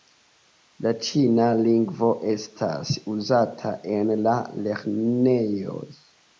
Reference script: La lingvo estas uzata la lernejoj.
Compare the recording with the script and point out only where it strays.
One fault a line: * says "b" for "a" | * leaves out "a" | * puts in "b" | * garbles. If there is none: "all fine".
* puts in "ĉina"
* puts in "en"